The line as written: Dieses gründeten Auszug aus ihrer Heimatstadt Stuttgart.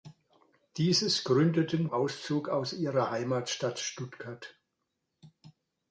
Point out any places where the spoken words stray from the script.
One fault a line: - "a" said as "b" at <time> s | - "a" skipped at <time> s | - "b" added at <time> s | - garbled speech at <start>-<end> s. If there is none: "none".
none